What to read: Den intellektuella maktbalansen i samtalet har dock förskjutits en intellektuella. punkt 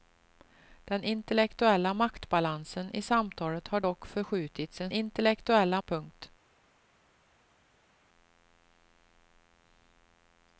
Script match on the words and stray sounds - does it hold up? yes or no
yes